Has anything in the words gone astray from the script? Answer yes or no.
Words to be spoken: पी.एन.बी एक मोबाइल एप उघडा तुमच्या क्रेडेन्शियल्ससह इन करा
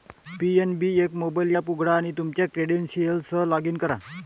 yes